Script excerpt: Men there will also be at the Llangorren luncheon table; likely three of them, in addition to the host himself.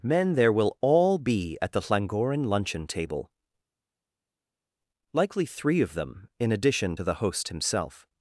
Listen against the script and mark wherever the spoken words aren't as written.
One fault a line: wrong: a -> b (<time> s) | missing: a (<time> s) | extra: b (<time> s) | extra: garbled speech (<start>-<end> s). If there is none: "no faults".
wrong: also -> all (0.8 s)